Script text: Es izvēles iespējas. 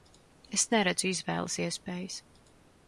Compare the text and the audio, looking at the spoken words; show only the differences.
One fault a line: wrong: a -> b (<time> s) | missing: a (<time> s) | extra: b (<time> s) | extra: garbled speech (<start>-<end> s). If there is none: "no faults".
extra: neredzu (0.7 s)